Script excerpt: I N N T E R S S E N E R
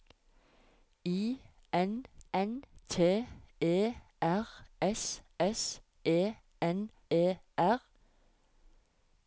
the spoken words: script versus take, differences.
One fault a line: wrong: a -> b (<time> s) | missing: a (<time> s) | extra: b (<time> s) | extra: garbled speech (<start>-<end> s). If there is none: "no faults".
no faults